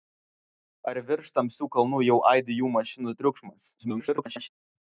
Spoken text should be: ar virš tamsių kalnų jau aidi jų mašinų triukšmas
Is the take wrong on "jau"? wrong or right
right